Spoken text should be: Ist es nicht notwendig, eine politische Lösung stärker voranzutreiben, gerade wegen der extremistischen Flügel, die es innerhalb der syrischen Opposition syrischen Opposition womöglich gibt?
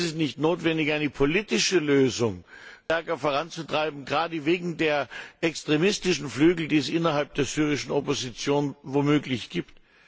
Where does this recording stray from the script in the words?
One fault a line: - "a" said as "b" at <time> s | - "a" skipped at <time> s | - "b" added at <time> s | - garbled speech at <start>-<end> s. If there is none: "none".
- "syrischen Opposition" skipped at 8.8 s